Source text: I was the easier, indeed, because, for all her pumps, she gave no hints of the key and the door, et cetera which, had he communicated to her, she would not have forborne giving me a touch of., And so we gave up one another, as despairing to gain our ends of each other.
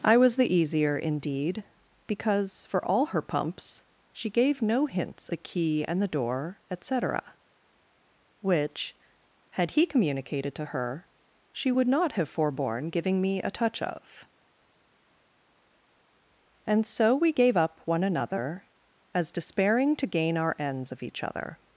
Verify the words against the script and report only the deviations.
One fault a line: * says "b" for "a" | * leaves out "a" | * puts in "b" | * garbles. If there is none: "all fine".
* leaves out "of"